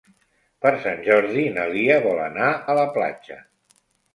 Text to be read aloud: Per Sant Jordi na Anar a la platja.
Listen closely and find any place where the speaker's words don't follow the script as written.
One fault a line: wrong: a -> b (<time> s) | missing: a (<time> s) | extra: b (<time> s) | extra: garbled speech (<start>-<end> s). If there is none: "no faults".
extra: Lia vol (1.8 s)